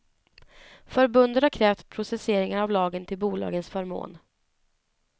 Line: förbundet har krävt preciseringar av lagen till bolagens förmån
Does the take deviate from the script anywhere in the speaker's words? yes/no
no